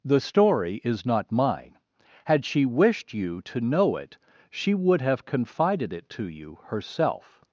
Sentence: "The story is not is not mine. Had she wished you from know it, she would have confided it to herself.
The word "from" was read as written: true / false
false